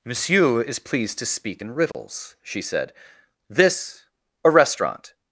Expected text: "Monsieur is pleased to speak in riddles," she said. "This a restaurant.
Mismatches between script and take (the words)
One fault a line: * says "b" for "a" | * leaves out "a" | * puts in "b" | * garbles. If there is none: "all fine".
all fine